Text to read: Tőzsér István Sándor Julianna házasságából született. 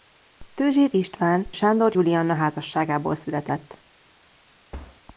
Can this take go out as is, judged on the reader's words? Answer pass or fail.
pass